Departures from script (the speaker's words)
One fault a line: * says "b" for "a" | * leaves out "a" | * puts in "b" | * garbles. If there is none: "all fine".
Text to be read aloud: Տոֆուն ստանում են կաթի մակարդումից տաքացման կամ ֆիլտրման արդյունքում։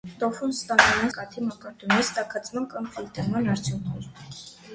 all fine